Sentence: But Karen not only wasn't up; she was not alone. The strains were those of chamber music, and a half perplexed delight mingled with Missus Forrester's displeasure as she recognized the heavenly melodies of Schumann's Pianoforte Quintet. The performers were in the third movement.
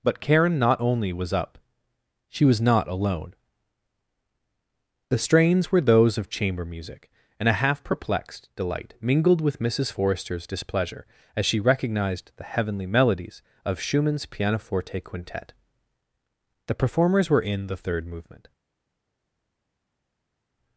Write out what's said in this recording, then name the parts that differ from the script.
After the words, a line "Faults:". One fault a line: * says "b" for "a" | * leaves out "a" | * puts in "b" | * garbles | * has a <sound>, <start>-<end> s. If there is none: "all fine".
But Karen not only was up; she was not alone. The strains were those of chamber music, and a half perplexed delight mingled with Missus Forrester's displeasure as she recognized the heavenly melodies of Schumann's Pianoforte Quintet. The performers were in the third movement.
Faults:
* says "was" for "wasn't"